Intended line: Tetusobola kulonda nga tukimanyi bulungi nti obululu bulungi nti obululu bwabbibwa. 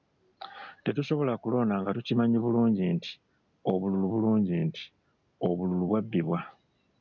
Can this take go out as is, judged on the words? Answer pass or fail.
pass